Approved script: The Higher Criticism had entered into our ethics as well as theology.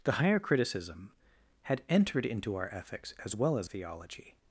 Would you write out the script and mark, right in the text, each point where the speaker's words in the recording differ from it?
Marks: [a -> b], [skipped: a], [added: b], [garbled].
The Higher Criticism had entered into our ethics as well as theology.